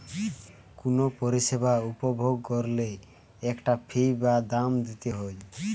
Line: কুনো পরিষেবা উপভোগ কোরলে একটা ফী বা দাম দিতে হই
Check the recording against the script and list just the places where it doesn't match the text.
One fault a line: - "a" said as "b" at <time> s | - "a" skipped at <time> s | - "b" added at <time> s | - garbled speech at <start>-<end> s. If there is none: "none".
none